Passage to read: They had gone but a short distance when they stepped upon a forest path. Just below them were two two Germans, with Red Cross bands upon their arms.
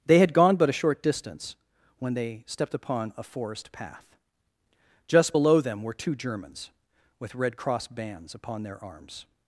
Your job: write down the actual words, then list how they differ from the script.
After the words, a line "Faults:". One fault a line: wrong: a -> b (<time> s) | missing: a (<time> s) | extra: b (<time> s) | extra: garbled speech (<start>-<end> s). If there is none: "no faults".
They had gone but a short distance when they stepped upon a forest path. Just below them were two Germans, with Red Cross bands upon their arms.
Faults:
missing: two (6.1 s)